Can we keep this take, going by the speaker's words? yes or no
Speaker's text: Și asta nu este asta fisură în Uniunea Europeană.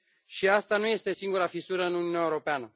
no